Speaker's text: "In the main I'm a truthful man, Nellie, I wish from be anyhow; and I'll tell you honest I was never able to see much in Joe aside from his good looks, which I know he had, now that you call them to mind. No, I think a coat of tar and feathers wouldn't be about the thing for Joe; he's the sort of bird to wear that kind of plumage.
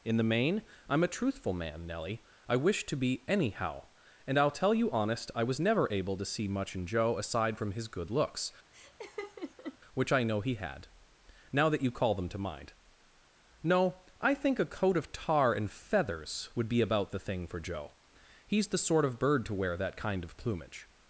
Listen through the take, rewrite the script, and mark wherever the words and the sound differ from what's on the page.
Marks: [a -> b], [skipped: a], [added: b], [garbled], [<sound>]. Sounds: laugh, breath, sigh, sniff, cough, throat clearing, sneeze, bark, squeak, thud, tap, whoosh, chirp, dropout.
"In the main I'm a truthful man, Nellie, I wish [from -> to] be anyhow; and I'll tell you honest I was never able to see much in Joe aside from his good looks, [laugh] which I know he had, now that you call them to mind. No, I think a coat of tar and feathers [wouldn't -> would] be about the thing for Joe; he's the sort of bird to wear that kind of plumage.